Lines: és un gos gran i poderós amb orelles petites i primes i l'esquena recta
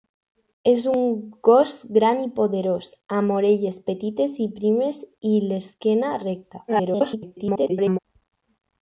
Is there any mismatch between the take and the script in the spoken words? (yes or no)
yes